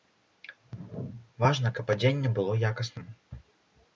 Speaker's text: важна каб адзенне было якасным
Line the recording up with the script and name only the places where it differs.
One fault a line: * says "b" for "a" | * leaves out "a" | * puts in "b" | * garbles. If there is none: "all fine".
all fine